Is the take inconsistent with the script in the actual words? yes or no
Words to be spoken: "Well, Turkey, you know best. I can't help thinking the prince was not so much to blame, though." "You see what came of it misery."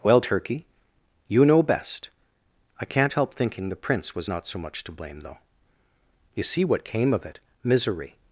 no